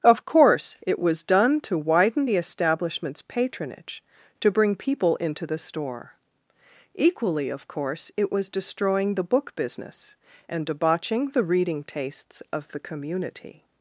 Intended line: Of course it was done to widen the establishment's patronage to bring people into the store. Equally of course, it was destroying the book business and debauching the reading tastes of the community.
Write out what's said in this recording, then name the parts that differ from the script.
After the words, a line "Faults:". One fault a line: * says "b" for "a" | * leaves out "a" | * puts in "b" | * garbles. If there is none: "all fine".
Of course it was done to widen the establishment's patronage to bring people into the store. Equally of course, it was destroying the book business and debauching the reading tastes of the community.
Faults:
all fine